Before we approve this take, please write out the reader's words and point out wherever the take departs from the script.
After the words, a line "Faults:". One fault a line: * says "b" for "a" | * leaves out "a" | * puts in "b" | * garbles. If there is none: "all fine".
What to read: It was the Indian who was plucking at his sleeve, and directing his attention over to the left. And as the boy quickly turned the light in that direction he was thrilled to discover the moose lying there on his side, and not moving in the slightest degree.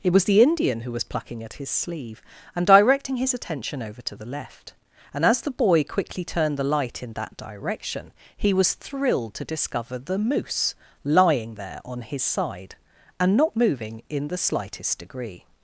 It was the Indian who was plucking at his sleeve, and directing his attention over to the left. And as the boy quickly turned the light in that direction he was thrilled to discover the moose lying there on his side, and not moving in the slightest degree.
Faults:
all fine